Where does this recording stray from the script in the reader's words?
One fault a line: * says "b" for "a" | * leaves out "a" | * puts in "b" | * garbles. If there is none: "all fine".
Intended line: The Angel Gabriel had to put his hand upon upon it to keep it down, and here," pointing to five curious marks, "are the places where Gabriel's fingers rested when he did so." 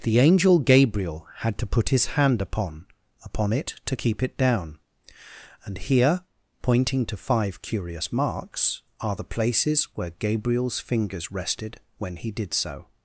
all fine